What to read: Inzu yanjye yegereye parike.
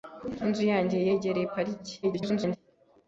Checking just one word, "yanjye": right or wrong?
right